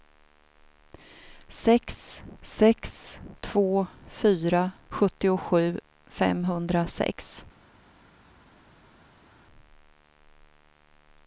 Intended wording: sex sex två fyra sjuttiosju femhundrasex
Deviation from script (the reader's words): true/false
false